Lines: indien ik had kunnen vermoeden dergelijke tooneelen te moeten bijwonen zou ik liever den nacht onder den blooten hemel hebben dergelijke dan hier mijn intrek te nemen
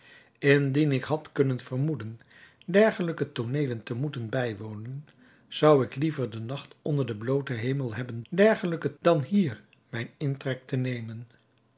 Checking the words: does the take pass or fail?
pass